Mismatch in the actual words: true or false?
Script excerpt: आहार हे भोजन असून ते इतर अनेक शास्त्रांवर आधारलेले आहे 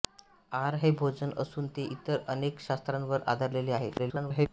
true